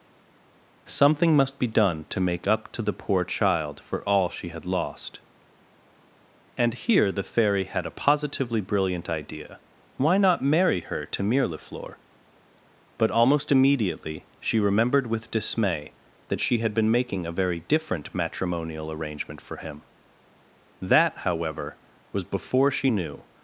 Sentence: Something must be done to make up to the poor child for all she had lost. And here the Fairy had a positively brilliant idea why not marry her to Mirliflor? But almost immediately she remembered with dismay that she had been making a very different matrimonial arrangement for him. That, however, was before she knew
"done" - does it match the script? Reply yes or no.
yes